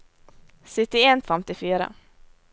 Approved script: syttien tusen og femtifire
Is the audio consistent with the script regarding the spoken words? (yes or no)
no